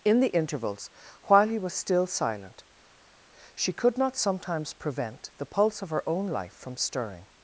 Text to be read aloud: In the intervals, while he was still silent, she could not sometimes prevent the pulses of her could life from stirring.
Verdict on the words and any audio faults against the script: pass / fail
fail